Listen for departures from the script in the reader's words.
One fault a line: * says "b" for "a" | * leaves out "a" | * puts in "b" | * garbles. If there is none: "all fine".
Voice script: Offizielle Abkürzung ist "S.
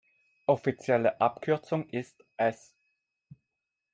all fine